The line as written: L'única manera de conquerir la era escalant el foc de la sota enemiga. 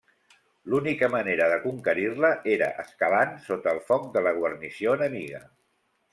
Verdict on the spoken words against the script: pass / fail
fail